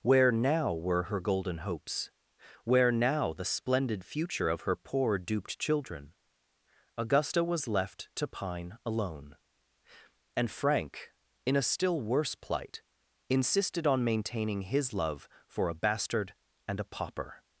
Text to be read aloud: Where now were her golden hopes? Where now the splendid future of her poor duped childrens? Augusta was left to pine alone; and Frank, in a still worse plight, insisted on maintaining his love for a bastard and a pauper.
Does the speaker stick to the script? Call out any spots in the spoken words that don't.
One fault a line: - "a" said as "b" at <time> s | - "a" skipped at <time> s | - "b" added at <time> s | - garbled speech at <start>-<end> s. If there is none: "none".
- "childrens" said as "children" at 5.6 s